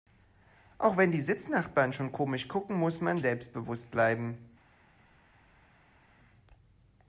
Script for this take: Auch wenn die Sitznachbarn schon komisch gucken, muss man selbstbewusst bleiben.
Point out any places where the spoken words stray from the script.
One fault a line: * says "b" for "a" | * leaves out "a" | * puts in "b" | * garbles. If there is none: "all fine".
all fine